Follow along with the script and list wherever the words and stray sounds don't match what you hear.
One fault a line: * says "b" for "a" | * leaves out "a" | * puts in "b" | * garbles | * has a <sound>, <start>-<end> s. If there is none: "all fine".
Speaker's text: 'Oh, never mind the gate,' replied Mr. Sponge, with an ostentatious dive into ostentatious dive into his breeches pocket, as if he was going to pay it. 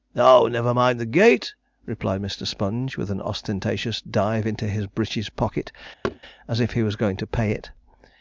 * leaves out "ostentatious dive into"
* has a thud, 6.0-6.2 s